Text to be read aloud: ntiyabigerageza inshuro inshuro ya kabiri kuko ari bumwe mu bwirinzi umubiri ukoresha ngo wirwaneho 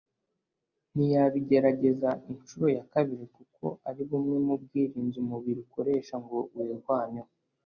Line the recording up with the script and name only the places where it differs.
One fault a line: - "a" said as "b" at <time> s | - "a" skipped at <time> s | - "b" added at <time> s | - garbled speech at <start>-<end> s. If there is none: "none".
- "inshuro" skipped at 2.6 s